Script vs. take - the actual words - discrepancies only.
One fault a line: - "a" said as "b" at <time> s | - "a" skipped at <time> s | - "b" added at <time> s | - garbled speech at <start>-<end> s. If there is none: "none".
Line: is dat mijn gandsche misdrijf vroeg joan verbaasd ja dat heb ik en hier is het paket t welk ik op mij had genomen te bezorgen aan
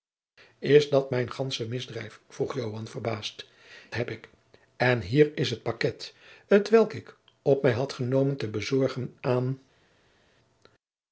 - "ja dat" skipped at 3.5 s